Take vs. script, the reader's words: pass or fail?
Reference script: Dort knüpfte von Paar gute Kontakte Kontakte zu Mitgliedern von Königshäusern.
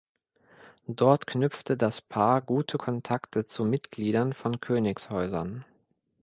fail